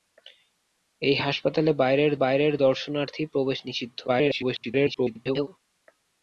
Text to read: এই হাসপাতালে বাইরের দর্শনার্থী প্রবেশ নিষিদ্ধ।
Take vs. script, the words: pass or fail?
fail